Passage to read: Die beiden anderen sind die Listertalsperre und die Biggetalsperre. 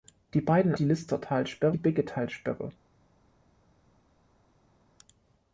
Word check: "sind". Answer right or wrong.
wrong